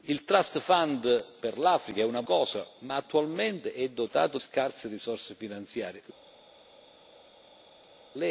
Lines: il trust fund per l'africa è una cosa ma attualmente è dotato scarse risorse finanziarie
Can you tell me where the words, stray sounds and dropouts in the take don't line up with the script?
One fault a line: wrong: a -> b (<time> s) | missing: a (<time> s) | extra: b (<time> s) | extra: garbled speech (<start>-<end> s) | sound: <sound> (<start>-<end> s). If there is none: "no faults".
no faults